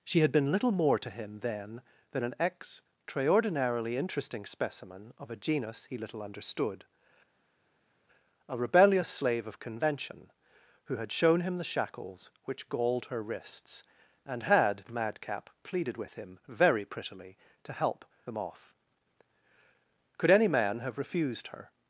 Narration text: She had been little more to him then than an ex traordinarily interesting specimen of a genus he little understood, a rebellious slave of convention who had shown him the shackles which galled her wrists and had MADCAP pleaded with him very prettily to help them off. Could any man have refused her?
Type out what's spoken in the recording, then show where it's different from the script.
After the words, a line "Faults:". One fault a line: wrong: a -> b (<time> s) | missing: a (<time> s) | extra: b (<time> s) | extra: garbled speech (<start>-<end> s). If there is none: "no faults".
She had been little more to him then than an ex traordinarily interesting specimen of a genus he little understood, a rebellious slave of convention who had shown him the shackles which galled her wrists and had MADCAP pleaded with him very prettily to help them off. Could any man have refused her?
Faults:
no faults